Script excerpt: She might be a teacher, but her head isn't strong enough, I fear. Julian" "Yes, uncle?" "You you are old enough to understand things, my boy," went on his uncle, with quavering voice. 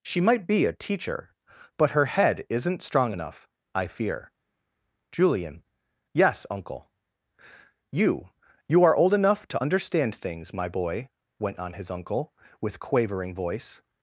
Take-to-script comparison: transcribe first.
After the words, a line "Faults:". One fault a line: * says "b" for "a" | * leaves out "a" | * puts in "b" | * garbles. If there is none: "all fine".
She might be a teacher, but her head isn't strong enough, I fear. Julian" "Yes, uncle?" "You you are old enough to understand things, my boy," went on his uncle, with quavering voice.
Faults:
all fine